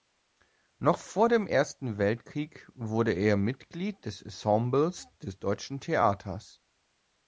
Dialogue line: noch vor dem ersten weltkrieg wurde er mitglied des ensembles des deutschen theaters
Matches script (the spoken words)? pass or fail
pass